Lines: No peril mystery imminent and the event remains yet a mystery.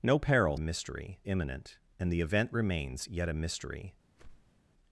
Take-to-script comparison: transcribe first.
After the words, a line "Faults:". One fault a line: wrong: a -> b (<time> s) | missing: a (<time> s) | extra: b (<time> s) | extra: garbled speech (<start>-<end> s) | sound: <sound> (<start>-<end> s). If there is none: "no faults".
No peril mystery imminent and the event remains yet a mystery.
Faults:
sound: whoosh (4.1-4.6 s)